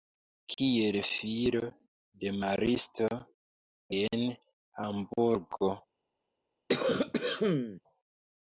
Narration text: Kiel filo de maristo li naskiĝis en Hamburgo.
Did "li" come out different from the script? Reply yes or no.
yes